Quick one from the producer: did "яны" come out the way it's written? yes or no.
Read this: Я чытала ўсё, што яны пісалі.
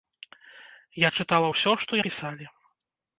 no